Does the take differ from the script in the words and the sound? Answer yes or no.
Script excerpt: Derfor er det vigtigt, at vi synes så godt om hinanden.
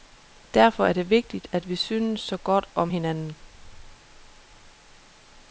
no